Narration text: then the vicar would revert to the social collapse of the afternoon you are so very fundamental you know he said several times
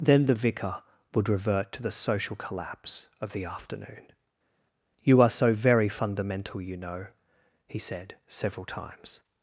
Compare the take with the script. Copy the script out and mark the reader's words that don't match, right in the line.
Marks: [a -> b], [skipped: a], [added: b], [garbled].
then the vicar would revert to the social collapse of the afternoon you are so very fundamental you know he said several times